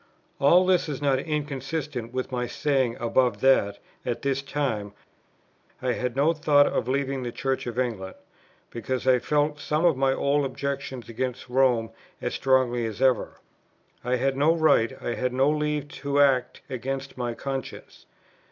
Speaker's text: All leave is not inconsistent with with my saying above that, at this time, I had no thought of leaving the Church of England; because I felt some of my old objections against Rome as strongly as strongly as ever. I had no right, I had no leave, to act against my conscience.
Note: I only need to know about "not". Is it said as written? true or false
true